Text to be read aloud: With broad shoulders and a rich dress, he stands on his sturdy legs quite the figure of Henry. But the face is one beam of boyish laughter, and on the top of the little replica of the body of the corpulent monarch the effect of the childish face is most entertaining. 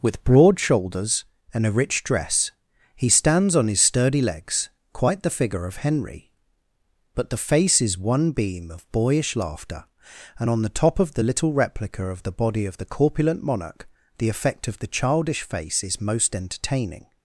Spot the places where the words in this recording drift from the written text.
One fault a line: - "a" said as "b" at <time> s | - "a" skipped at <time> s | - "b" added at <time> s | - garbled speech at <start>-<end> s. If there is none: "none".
none